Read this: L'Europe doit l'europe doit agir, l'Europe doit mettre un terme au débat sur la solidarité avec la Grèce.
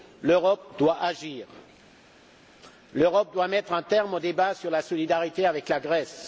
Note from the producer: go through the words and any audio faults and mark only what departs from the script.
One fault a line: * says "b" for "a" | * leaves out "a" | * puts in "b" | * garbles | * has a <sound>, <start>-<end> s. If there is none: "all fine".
* leaves out "l'europe doit"